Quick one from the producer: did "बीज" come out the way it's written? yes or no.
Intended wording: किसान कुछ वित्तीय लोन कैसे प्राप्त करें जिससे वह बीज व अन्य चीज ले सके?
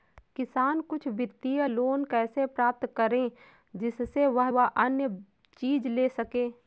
no